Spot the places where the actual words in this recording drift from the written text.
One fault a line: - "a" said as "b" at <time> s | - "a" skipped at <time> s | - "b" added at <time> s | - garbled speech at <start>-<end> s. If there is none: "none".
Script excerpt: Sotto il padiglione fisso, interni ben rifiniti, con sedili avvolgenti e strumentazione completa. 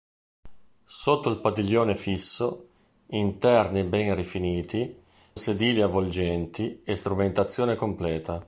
- "con" skipped at 5.0 s